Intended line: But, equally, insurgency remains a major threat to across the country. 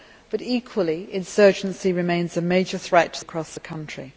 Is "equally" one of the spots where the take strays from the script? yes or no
no